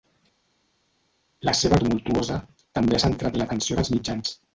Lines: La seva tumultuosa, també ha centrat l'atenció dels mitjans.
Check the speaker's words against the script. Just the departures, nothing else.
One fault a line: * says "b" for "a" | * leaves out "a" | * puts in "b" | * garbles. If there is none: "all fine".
all fine